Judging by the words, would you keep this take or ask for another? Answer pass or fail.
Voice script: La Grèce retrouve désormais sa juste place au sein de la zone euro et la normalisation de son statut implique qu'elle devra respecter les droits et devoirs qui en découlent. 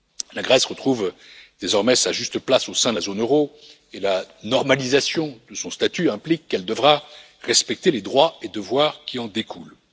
pass